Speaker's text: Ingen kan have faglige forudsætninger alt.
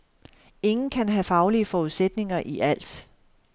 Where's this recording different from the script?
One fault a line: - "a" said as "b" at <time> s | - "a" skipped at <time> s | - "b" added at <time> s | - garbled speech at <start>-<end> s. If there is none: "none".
- "i" added at 2.4 s